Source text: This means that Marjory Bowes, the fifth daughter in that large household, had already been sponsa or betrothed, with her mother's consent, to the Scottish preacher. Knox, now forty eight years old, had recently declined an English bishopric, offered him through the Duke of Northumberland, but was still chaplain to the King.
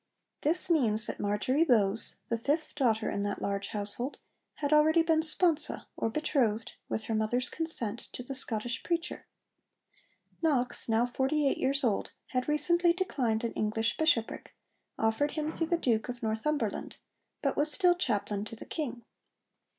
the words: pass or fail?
pass